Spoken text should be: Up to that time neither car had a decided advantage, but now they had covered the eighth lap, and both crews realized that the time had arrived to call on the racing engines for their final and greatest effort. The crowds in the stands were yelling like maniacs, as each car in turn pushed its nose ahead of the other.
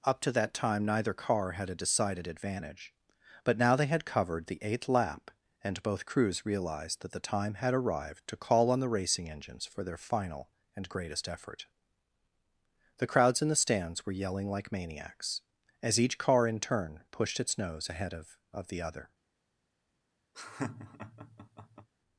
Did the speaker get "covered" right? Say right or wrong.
right